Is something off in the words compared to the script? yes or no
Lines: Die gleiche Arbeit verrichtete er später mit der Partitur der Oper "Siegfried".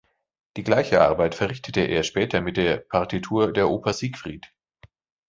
no